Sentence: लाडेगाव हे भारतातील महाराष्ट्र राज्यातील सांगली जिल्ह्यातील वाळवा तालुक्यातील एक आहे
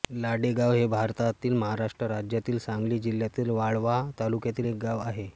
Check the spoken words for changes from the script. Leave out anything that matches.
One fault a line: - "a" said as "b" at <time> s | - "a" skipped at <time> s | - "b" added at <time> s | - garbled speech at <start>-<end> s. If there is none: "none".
- "गाव" added at 4.8 s